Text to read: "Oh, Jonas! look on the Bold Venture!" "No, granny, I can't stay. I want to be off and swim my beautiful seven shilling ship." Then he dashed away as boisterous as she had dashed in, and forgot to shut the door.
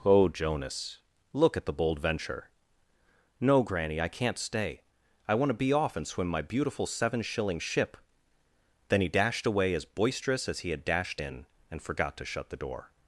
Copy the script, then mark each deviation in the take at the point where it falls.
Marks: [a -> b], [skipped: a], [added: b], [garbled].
"Oh, Jonas! look [on -> at] the Bold Venture!" "No, granny, I can't stay. I want to be off and swim my beautiful seven shilling ship." Then he dashed away as boisterous as [she -> he] had dashed in, and forgot to shut the door.